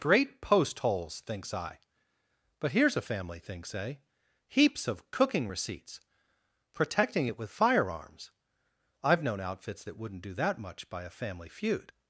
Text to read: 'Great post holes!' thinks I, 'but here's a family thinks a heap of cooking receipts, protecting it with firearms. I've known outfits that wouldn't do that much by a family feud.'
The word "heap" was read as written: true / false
false